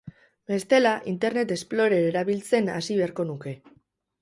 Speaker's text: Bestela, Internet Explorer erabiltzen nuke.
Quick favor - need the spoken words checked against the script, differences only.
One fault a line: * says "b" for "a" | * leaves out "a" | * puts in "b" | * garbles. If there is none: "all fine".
* puts in "hasi beharko"